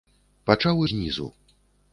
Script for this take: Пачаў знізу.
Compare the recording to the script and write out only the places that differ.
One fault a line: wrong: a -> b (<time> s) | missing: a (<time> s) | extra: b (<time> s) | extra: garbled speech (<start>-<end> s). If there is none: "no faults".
no faults